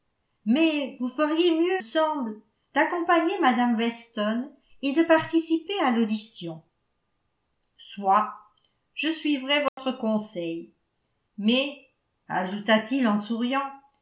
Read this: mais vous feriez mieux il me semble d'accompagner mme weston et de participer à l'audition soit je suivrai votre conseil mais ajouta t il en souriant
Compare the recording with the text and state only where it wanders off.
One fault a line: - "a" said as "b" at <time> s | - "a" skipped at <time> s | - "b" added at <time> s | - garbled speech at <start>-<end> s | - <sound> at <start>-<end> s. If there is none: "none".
- "il me" skipped at 1.8 s
- dropout at 9.7-9.8 s